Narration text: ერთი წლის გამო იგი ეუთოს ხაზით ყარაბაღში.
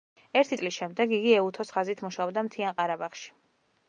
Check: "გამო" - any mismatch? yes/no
yes